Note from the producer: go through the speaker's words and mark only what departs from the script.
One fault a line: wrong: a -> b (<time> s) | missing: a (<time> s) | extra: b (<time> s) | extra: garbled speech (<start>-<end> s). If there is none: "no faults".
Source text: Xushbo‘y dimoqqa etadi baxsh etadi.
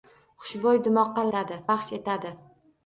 no faults